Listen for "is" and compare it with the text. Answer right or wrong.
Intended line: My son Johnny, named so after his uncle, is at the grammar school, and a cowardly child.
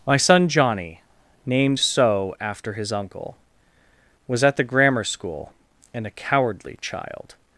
wrong